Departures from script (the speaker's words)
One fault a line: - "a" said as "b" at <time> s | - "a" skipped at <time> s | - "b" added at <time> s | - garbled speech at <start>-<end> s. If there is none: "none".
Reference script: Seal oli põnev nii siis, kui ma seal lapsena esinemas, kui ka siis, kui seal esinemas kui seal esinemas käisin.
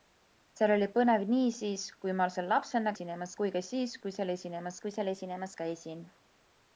none